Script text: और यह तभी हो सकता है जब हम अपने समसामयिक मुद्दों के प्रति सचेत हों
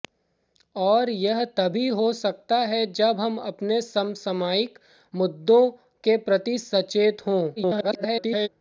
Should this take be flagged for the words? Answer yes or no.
yes